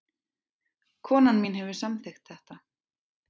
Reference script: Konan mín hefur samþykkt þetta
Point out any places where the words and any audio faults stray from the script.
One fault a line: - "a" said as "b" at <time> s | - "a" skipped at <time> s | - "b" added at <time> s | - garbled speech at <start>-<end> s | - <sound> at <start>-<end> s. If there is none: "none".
none